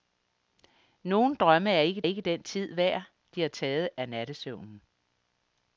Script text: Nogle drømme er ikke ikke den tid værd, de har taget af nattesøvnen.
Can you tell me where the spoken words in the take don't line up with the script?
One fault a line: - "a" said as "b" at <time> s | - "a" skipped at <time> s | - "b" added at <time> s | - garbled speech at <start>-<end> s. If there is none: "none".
none